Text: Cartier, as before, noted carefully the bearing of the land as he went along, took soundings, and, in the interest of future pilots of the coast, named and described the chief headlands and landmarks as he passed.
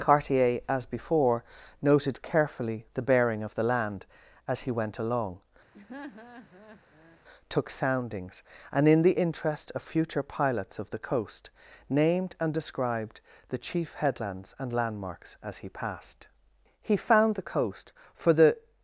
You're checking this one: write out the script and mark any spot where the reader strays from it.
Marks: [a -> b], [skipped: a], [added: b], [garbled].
Cartier, as before, noted carefully the bearing of the land as he went along, took soundings, and, in the interest of future pilots of the coast, named and described the chief headlands and landmarks as he passed. [added: He found the coast for the]